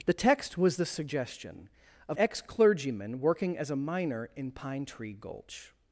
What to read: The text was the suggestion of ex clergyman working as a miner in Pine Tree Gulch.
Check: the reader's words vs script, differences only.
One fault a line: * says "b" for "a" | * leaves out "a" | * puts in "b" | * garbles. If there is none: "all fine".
all fine